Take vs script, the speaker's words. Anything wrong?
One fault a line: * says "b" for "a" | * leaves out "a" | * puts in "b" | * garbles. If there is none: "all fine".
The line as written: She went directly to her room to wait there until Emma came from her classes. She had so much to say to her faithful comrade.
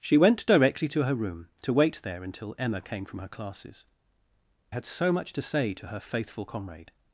* leaves out "She"